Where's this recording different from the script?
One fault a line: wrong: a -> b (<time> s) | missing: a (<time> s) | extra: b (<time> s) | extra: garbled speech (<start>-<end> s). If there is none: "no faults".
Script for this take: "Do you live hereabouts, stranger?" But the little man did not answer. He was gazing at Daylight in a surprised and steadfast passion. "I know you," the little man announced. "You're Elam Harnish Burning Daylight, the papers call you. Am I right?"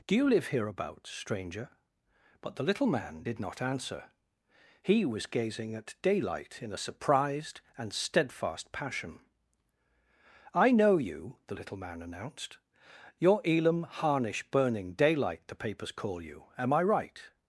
no faults